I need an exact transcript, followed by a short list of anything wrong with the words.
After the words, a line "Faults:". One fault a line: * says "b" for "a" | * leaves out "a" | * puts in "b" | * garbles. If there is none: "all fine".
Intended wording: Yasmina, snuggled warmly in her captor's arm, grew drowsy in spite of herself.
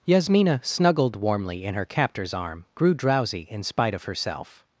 Yasmina, snuggled warmly in her captor's arm, grew drowsy in spite of herself.
Faults:
all fine